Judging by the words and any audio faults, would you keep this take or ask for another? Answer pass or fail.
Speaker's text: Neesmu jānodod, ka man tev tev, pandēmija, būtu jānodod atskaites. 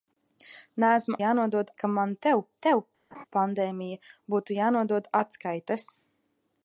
fail